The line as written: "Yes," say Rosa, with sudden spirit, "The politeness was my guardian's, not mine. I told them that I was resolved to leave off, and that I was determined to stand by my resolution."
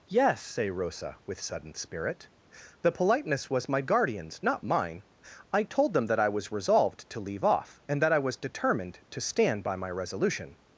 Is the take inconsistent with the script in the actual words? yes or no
no